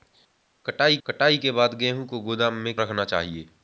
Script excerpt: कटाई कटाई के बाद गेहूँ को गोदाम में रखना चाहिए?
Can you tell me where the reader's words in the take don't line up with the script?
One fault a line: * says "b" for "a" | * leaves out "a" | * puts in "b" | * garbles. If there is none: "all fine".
all fine